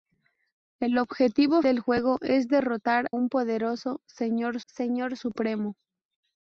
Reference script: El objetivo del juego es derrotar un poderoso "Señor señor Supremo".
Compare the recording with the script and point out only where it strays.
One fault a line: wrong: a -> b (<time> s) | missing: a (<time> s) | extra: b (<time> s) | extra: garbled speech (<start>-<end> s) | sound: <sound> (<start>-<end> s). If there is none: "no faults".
no faults